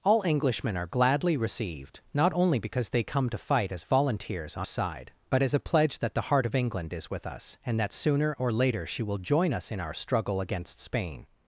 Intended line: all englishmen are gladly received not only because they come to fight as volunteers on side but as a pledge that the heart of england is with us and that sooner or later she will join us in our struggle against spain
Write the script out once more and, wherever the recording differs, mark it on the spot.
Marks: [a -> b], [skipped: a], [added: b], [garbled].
all englishmen are gladly received not only because they come to fight as volunteers on side but as a pledge that the heart of england is with us and that sooner or later she will join us in our struggle against spain